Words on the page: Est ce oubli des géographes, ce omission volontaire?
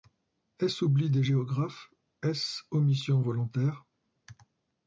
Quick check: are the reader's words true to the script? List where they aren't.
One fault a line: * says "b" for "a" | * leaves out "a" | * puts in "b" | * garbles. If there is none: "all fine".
* puts in "est"